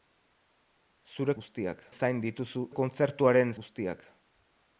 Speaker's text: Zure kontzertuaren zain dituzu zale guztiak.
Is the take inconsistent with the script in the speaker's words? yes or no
yes